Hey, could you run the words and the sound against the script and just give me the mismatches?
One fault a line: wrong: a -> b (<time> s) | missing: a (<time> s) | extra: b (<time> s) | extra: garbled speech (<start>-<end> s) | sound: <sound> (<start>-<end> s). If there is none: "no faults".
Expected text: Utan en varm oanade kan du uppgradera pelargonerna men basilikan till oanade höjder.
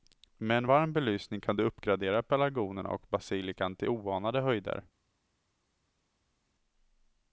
wrong: Utan -> Med (0.4 s)
wrong: oanade -> belysning (0.9 s)
wrong: men -> och (2.9 s)